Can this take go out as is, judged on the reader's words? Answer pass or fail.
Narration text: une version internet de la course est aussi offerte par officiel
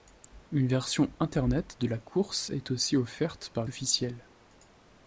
pass